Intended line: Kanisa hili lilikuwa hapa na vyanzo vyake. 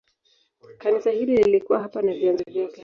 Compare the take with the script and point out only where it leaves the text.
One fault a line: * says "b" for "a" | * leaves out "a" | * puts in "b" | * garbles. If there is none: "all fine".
all fine